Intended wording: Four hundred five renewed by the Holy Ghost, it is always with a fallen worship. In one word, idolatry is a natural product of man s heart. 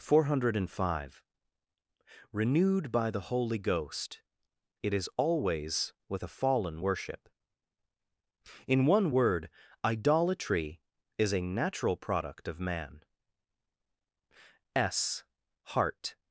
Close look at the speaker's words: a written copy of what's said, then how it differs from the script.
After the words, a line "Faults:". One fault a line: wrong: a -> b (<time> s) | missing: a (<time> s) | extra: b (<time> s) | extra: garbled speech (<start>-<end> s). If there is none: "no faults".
Four hundred five renewed by the Holy Ghost, it is always with a fallen worship. In one word, idolatry is a natural product of man s heart.
Faults:
no faults